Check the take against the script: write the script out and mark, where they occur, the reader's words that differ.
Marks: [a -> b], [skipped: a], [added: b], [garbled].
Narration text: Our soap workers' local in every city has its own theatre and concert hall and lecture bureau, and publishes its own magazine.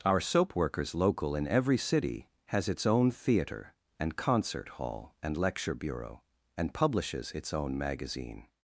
Our soap workers' local in every city has its own theatre and concert hall and lecture bureau, and publishes its own magazine.